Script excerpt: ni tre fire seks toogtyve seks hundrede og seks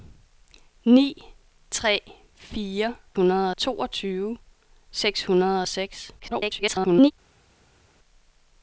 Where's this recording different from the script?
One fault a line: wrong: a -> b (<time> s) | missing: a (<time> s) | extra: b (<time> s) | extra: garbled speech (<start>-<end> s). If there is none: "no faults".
wrong: seks -> hundrede (3.1 s)
extra: garbled speech (6.2-7.1 s)